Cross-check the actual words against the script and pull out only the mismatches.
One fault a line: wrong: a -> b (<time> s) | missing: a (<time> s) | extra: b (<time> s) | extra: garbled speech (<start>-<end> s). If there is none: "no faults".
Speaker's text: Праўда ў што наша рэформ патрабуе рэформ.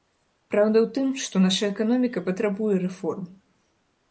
extra: тым (0.9 s)
wrong: рэформ -> эканоміка (1.7 s)